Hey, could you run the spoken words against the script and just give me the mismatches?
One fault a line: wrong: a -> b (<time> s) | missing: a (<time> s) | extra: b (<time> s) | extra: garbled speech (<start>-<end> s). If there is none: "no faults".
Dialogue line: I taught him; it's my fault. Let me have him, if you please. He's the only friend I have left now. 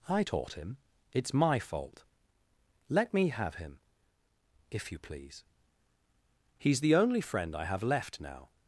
no faults